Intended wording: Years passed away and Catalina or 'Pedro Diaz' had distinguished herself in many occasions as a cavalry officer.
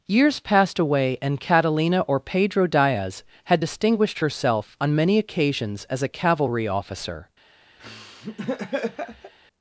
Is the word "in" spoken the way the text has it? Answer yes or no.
no